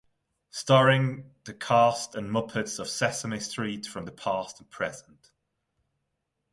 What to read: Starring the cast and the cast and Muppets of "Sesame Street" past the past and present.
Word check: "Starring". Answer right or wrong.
right